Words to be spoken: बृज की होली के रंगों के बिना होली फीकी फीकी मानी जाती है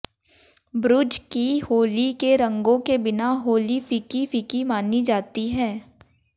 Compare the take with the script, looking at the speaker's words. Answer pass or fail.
pass